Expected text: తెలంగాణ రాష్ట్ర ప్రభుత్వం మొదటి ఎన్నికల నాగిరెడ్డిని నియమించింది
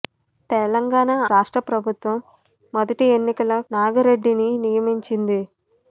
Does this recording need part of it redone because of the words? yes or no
no